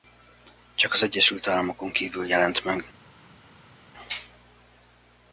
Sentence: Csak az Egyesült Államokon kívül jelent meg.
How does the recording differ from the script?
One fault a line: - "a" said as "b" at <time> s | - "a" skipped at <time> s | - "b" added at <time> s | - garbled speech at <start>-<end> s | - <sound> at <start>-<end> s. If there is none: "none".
none